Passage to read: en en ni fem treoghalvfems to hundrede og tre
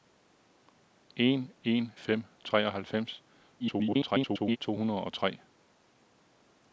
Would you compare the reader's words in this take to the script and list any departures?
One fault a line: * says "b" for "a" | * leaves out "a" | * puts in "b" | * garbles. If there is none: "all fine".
* leaves out "ni"
* garbles